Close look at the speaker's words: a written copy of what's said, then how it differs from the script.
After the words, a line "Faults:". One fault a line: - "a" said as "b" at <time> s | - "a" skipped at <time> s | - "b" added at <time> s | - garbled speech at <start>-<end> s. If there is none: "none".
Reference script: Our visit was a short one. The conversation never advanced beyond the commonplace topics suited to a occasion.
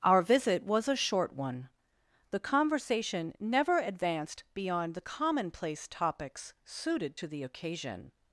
Our visit was a short one. The conversation never advanced beyond the commonplace topics suited to the occasion.
Faults:
- "a" said as "the" at 7.3 s